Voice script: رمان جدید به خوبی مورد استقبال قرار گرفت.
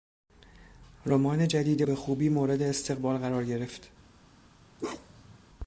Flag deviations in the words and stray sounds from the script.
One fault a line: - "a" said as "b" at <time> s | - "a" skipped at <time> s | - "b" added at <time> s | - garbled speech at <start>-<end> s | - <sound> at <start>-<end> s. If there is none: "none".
- bark at 4.8-5.4 s